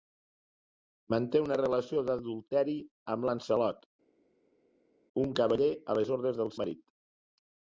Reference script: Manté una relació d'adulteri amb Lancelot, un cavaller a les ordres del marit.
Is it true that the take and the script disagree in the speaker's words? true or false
false